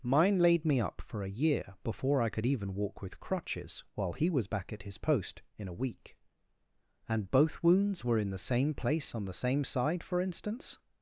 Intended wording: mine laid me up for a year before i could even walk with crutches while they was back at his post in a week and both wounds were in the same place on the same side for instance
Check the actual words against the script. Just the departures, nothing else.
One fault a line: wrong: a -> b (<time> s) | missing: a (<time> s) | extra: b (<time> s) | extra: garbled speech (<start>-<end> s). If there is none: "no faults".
wrong: they -> he (4.1 s)